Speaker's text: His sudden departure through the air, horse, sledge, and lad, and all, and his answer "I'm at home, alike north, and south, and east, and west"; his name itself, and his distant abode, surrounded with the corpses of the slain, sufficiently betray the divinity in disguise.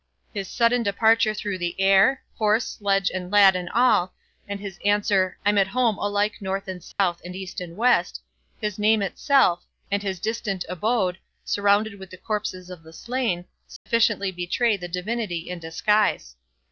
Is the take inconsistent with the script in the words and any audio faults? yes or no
yes